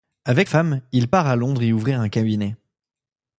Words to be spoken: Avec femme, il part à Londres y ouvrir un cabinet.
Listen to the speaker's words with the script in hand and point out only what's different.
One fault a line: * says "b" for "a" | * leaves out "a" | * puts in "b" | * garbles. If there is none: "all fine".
all fine